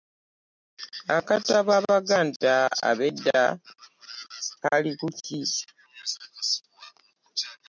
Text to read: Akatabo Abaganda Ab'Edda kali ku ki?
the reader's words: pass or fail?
pass